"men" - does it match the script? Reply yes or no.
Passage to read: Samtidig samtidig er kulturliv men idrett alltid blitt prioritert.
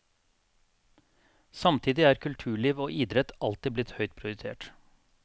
no